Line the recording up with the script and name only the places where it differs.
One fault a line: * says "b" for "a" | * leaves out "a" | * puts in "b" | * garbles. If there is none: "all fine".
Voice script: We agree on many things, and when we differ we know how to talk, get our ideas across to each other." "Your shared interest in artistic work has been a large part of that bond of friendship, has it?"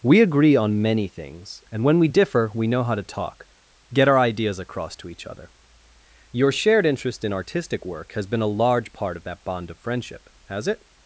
all fine